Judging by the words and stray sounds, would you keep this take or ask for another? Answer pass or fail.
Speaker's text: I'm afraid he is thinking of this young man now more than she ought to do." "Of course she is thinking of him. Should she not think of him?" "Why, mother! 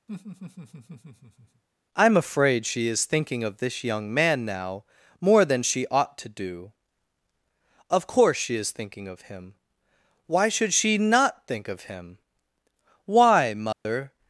fail